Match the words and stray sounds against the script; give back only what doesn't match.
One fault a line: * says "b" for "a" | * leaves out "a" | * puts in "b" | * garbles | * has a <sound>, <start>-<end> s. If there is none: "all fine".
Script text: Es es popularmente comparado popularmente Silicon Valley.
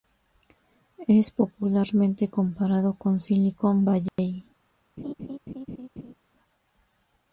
* leaves out "es"
* says "con" for "popularmente"
* has a dropout, 4.1-4.2 s
* has a laugh, 5.0-6.1 s